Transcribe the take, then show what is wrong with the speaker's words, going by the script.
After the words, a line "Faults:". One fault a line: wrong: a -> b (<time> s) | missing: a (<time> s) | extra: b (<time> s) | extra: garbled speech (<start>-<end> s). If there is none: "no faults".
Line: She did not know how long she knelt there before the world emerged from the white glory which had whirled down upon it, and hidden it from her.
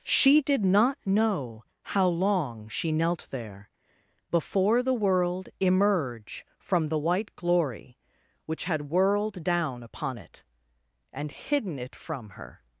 She did not know how long she knelt there before the world emerge from the white glory which had whirled down upon it, and hidden it from her.
Faults:
wrong: emerged -> emerge (5.6 s)